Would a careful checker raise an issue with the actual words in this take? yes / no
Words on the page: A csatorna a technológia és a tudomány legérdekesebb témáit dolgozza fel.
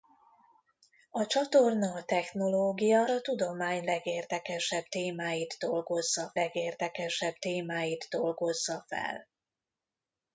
yes